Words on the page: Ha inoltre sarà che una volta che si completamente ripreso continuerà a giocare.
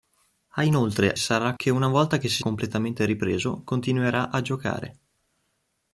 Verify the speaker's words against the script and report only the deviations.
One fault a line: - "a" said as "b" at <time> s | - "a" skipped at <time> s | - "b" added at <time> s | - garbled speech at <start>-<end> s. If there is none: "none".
none